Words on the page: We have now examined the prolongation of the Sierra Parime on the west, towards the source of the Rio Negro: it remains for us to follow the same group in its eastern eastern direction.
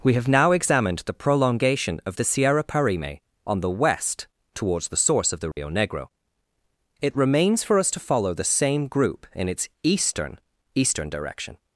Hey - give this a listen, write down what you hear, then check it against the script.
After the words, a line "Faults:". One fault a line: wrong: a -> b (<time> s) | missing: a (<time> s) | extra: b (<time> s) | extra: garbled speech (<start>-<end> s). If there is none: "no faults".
We have now examined the prolongation of the Sierra Parime on the west, towards the source of the Rio Negro: it remains for us to follow the same group in its eastern eastern direction.
Faults:
no faults